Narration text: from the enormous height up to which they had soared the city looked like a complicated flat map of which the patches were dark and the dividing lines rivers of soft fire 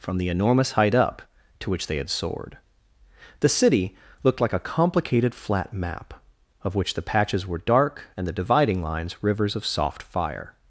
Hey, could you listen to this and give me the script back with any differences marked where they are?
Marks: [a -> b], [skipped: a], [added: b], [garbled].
from the enormous height up to which they had soared the city looked like a complicated flat map of which the patches were dark and the dividing lines rivers of soft fire